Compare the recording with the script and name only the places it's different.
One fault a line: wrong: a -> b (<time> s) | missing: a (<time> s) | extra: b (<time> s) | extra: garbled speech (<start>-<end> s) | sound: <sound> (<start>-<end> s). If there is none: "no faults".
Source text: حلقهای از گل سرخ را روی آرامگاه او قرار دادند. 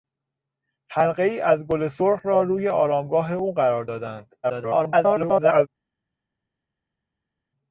extra: garbled speech (4.4-5.7 s)